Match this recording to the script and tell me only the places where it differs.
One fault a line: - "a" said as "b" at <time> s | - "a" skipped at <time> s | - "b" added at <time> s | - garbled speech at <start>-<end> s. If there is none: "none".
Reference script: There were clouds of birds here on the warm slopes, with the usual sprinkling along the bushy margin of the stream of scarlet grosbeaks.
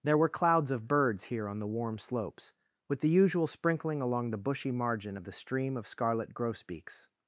none